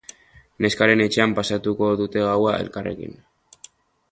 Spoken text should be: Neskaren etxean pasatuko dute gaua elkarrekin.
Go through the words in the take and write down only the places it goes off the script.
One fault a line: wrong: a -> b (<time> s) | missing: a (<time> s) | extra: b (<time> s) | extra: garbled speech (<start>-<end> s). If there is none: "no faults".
no faults